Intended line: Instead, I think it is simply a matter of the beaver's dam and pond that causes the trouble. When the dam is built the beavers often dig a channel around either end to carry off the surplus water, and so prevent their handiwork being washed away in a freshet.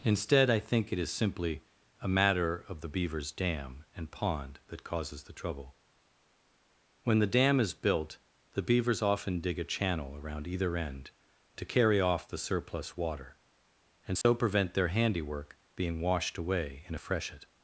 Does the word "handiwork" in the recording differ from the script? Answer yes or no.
no